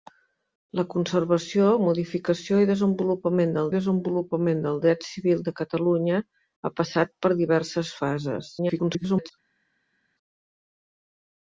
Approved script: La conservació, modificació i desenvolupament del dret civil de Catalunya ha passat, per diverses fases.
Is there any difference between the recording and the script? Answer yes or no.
yes